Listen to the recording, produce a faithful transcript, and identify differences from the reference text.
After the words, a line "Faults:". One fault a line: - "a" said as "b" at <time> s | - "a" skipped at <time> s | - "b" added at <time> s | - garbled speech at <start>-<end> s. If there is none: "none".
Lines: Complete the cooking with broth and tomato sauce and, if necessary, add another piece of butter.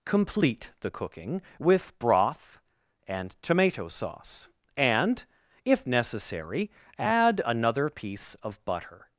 Complete the cooking with broth and tomato sauce and, if necessary, add another piece of butter.
Faults:
none